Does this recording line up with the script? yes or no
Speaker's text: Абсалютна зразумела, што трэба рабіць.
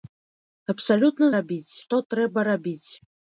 no